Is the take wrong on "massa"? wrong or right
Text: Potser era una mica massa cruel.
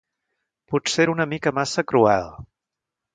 right